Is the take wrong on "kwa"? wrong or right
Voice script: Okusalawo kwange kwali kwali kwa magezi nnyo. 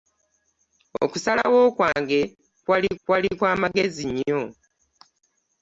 right